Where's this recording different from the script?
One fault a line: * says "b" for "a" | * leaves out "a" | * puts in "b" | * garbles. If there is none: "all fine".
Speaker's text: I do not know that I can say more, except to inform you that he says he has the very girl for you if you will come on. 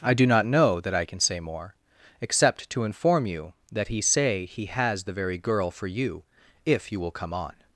* says "say" for "says"